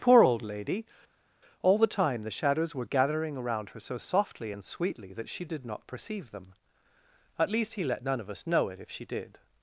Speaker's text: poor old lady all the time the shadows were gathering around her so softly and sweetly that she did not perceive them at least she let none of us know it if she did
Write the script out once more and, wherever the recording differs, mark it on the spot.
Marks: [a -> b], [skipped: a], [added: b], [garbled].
poor old lady all the time the shadows were gathering around her so softly and sweetly that she did not perceive them at least [she -> he] let none of us know it if she did